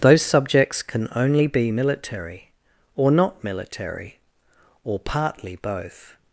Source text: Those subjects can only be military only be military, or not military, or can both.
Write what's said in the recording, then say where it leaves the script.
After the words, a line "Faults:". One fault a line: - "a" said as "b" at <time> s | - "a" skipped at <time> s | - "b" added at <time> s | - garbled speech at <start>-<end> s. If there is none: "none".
Those subjects can only be military, or not military, or partly both.
Faults:
- "only be military" skipped at 2.5 s
- "can" said as "partly" at 5.0 s